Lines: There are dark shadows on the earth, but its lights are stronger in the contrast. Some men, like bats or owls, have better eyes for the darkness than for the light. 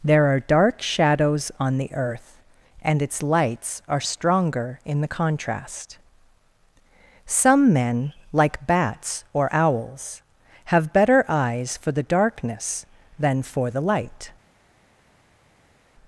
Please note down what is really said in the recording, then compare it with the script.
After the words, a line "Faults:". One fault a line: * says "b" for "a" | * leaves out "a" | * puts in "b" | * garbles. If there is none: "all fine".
There are dark shadows on the earth, and its lights are stronger in the contrast. Some men, like bats or owls, have better eyes for the darkness than for the light.
Faults:
* says "and" for "but"